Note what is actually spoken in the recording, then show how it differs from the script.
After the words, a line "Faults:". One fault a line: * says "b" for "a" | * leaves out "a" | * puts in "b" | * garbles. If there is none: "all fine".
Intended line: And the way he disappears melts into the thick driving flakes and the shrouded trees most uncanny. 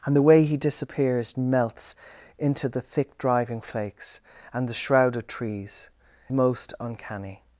And the way he disappears melts into the thick driving flakes and the shrouded trees most uncanny.
Faults:
all fine